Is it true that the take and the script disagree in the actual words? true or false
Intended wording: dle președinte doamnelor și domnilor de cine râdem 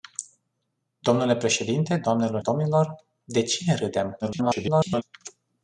true